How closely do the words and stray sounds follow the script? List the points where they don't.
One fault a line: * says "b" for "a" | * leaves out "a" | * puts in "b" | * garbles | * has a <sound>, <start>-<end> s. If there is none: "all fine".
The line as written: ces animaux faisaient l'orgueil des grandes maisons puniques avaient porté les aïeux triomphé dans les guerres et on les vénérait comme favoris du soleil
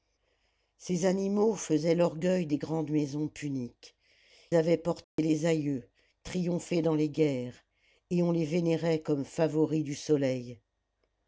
* has a dropout, 5.0-5.2 s